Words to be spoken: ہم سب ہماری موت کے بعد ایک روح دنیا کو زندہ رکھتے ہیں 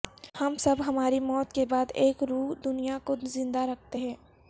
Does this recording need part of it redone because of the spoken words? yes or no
no